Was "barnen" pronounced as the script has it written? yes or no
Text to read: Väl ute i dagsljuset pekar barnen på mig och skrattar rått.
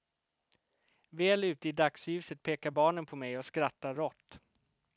yes